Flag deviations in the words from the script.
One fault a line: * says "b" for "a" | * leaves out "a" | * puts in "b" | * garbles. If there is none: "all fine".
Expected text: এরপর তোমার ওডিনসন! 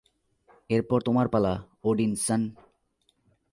* puts in "পালা"